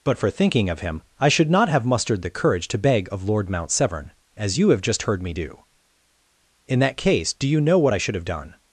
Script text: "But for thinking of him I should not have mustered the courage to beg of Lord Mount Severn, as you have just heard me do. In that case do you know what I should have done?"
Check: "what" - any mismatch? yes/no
no